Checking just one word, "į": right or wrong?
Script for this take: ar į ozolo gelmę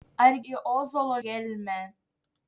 right